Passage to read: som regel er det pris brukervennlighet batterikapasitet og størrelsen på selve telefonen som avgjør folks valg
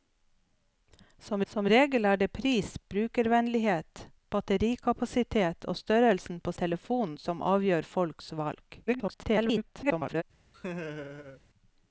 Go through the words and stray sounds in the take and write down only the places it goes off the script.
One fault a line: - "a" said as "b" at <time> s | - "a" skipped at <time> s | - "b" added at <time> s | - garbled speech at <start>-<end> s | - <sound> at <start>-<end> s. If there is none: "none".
- "som" added at 1.5 s
- "selve" skipped at 6.5 s
- garbled speech at 8.9-10.2 s
- laugh at 10.5-11.4 s